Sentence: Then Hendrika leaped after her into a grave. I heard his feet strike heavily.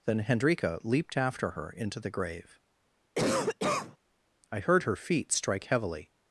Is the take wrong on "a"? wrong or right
wrong